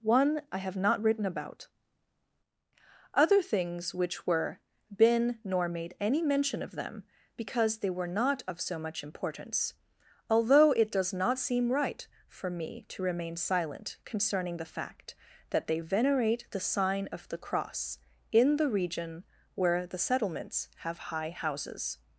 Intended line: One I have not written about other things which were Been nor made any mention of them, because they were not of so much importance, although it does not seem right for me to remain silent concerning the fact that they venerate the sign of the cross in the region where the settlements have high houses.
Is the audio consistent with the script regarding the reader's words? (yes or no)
yes